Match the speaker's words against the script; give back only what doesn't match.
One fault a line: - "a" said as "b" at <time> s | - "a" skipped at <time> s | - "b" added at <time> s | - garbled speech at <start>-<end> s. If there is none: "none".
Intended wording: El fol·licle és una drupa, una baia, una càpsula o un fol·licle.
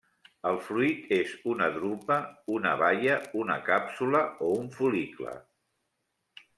- "fol·licle" said as "fruit" at 0.7 s